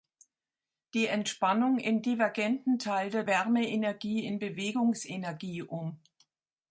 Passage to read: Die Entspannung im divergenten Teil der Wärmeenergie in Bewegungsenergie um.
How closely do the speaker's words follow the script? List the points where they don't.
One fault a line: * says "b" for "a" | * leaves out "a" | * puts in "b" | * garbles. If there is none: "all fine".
all fine